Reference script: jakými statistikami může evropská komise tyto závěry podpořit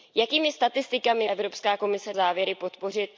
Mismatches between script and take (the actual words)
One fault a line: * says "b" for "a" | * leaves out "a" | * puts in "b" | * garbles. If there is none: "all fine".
* leaves out "může"
* leaves out "tyto"